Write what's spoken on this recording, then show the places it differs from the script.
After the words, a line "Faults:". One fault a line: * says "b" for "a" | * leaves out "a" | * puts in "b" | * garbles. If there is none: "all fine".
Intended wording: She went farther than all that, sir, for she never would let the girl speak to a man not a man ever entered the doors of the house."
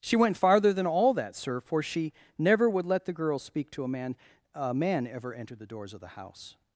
She went farther than all that, sir, for she never would let the girl speak to a man a man ever entered the doors of the house."
Faults:
* leaves out "not"